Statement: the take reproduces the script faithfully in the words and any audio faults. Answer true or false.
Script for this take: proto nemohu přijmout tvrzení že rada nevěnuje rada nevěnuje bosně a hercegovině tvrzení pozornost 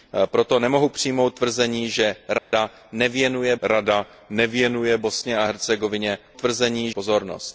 false